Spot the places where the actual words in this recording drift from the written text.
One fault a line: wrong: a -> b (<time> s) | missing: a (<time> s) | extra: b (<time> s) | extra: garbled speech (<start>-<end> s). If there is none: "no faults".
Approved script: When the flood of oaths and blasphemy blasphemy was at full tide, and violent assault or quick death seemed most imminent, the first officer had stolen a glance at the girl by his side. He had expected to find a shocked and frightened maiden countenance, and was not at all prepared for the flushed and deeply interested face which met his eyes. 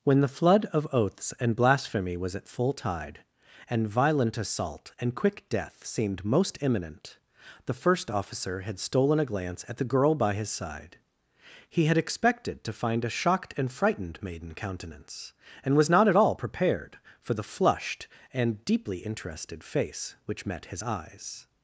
missing: blasphemy (2.2 s)
wrong: or -> and (5.0 s)